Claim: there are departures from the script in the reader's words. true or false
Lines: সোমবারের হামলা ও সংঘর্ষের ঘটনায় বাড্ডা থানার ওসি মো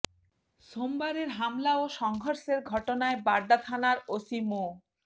false